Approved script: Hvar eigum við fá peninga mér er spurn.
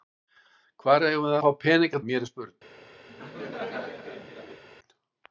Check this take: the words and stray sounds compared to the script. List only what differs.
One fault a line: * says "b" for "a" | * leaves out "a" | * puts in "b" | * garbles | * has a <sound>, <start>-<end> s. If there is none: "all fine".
* has a laugh, 3.1-4.6 s